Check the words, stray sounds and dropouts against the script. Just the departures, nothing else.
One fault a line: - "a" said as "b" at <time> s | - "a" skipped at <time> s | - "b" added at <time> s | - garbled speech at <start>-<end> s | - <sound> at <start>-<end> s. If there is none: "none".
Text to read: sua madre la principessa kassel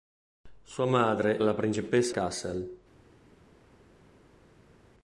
none